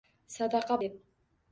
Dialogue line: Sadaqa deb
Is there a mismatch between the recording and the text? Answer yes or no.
no